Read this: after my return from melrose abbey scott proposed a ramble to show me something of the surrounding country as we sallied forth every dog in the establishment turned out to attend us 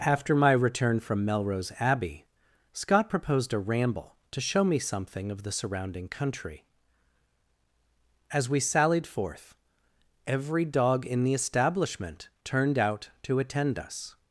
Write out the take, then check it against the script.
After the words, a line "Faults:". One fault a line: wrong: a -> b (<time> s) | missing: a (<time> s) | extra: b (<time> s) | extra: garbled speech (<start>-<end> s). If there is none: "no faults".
after my return from melrose abbey scott proposed a ramble to show me something of the surrounding country as we sallied forth every dog in the establishment turned out to attend us
Faults:
no faults